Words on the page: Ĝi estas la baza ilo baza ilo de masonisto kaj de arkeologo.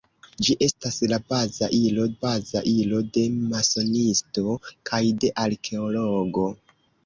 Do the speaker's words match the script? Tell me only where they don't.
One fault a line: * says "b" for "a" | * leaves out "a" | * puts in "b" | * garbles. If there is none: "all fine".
all fine